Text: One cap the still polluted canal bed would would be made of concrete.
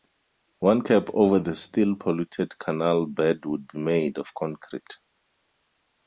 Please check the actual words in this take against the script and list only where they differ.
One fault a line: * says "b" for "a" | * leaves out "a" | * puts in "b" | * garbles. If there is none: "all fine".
* puts in "over"
* leaves out "would"